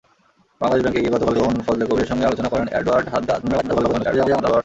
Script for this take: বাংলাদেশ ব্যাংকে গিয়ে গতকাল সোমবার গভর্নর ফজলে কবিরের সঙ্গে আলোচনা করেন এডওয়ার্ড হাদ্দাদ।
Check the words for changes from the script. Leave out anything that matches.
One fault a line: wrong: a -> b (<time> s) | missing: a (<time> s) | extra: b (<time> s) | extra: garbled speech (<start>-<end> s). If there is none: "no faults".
missing: সোমবার (1.4 s)
extra: garbled speech (3.4-4.6 s)